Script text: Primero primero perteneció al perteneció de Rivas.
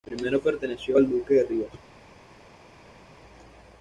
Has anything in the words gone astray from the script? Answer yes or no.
yes